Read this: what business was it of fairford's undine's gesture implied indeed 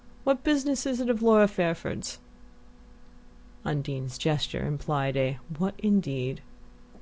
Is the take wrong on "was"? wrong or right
wrong